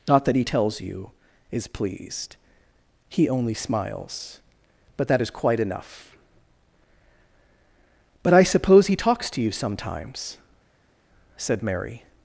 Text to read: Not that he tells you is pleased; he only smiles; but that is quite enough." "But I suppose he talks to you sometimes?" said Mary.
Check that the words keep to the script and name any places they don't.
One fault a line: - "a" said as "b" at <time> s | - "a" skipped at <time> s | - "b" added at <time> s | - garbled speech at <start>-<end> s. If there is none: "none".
none